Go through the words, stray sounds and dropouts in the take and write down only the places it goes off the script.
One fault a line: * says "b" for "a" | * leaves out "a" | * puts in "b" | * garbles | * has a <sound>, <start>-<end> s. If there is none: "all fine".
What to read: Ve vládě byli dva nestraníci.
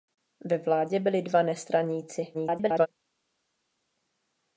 * garbles